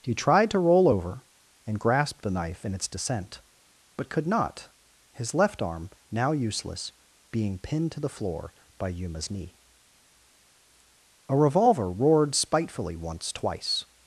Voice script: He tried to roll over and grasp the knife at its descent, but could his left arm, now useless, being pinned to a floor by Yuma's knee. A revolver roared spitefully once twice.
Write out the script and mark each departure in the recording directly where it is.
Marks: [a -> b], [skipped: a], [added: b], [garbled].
He tried to roll over and grasp the knife [at -> in] its descent, but could [added: not] his left arm, now useless, being pinned to [a -> the] floor by Yuma's knee. A revolver roared spitefully once twice.